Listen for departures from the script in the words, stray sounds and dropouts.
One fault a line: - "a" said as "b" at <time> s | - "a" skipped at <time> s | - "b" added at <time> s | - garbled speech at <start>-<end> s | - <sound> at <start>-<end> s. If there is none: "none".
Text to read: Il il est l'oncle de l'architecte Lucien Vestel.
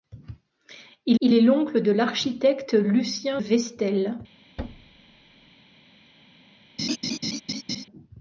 - thud at 4.6-5.6 s
- laugh at 6.8-7.9 s